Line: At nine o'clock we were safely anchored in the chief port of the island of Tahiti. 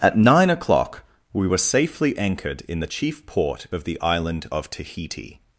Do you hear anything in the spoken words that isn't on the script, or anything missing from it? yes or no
no